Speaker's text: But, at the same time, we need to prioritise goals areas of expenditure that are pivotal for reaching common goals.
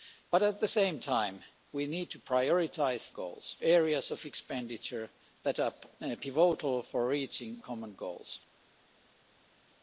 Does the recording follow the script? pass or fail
pass